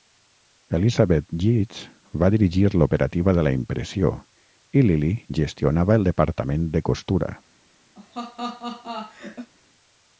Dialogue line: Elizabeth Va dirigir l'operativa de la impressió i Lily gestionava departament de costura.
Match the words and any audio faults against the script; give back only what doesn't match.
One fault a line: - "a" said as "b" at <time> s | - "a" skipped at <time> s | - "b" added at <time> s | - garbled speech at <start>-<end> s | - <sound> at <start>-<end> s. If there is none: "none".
- "Yeats" added at 1.4 s
- "el" added at 6.0 s
- laugh at 8.0-9.5 s